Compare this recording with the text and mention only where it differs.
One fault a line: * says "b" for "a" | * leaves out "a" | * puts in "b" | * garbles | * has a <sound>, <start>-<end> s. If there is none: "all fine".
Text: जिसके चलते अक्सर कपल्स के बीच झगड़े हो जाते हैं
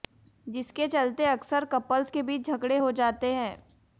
all fine